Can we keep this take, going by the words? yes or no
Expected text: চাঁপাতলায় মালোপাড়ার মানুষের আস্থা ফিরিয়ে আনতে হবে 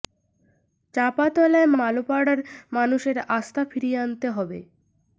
yes